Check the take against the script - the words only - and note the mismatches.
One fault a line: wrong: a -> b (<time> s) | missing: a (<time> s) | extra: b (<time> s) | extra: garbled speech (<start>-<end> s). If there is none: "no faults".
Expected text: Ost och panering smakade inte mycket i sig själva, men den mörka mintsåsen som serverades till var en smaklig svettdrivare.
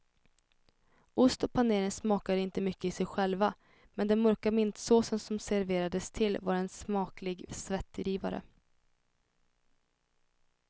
no faults